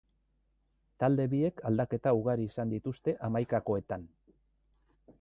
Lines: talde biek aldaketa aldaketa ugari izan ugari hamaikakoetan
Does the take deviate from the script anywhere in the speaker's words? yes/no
yes